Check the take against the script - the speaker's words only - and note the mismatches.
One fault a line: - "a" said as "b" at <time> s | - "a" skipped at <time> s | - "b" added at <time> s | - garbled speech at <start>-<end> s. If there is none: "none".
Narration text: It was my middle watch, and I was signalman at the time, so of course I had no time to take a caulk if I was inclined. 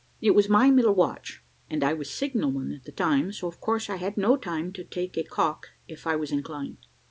none